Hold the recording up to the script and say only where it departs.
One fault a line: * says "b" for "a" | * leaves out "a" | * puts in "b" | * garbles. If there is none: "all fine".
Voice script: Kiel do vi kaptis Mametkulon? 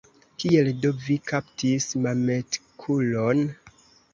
all fine